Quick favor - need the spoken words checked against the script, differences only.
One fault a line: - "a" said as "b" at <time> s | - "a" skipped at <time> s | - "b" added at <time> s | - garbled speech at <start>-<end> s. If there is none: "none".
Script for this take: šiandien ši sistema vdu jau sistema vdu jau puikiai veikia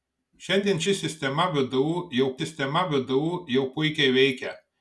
none